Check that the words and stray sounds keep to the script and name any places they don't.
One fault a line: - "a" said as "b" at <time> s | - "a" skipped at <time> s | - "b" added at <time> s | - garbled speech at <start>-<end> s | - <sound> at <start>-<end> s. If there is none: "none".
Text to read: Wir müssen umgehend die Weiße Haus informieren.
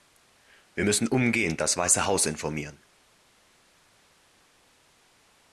- "die" said as "das" at 1.6 s